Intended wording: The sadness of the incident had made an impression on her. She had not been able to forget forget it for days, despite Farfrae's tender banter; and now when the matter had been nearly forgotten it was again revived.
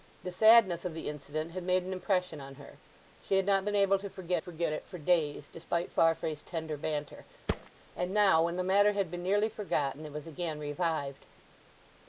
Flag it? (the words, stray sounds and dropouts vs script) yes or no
yes